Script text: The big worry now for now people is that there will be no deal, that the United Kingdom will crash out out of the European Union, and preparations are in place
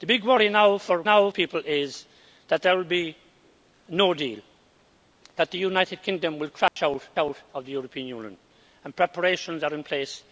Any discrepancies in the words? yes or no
no